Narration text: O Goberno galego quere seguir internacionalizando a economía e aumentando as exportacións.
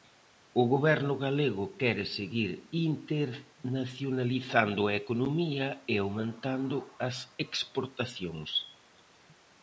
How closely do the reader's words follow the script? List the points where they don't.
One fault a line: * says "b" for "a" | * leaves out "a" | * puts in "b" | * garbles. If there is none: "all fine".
all fine